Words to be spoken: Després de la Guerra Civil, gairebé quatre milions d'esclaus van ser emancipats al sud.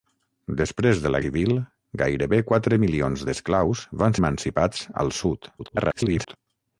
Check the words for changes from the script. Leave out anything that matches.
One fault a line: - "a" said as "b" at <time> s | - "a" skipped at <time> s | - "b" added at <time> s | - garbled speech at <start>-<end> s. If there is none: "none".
- "Guerra" skipped at 1.2 s
- "ser" skipped at 4.2 s
- garbled speech at 5.6-6.4 s